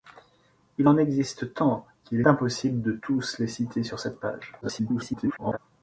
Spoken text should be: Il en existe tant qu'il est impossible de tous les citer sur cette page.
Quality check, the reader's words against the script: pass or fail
fail